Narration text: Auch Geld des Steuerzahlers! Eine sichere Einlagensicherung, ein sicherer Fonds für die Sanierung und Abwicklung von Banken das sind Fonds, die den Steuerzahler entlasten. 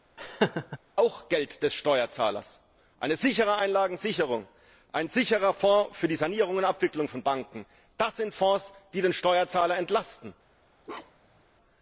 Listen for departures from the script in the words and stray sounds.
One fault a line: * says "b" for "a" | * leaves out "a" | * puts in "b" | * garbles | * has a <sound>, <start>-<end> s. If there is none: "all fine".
* has a laugh, 0.2-0.8 s
* has a bark, 10.8-11.4 s